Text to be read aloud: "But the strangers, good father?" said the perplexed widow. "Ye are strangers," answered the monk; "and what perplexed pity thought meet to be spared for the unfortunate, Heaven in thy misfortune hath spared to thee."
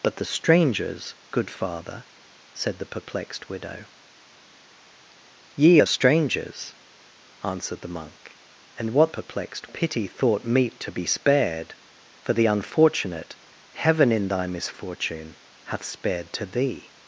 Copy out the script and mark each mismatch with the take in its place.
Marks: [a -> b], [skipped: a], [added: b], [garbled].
"But the strangers, good father?" said the perplexed widow. "Ye are strangers," answered the monk; "and what perplexed pity thought meet to be spared for the unfortunate, Heaven in thy misfortune hath spared to thee."